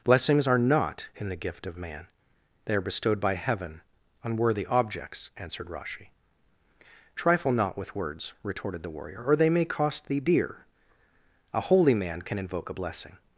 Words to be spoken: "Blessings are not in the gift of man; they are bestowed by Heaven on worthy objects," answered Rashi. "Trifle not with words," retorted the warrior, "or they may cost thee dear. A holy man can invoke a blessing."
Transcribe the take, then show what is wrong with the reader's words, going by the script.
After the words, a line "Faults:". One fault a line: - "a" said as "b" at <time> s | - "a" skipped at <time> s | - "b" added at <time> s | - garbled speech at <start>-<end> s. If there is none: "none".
"Blessings are not in the gift of man; they are bestowed by Heaven on worthy objects," answered Rashi. "Trifle not with words," retorted the warrior, "or they may cost thee dear. A holy man can invoke a blessing."
Faults:
none